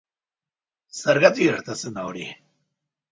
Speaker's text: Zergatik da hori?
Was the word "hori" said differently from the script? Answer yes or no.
no